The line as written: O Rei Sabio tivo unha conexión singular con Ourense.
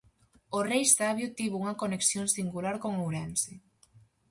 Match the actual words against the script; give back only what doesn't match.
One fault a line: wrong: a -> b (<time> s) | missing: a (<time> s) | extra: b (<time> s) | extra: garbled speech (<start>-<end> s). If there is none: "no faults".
no faults